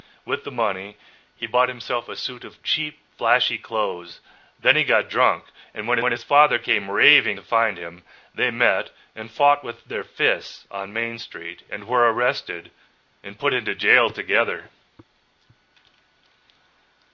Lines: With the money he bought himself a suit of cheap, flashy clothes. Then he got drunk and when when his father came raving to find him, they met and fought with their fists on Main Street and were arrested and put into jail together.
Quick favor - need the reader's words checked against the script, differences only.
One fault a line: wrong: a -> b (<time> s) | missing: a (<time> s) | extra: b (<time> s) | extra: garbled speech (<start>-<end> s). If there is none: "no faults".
no faults